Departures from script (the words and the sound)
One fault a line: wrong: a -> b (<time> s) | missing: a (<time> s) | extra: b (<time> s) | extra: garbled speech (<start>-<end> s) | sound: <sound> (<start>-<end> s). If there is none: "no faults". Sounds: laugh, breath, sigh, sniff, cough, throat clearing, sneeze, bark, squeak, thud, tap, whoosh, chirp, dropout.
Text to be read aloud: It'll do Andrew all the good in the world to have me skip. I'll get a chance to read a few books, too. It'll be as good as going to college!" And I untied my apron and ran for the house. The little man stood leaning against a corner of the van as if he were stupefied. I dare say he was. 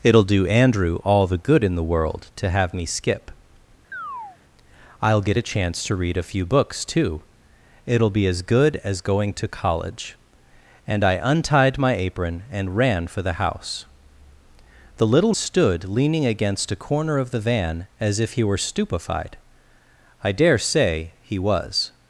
sound: chirp (3.9-4.4 s)
missing: man (15.3 s)